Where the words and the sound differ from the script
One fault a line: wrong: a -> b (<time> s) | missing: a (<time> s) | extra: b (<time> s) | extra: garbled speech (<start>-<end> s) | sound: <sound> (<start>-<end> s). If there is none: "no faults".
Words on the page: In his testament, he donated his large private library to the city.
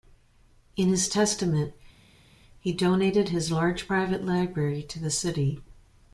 no faults